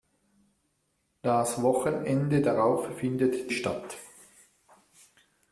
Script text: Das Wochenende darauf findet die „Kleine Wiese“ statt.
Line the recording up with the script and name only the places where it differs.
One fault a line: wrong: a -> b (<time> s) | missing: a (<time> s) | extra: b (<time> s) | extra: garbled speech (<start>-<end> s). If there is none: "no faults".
missing: die Kleine Wiese (3.5 s)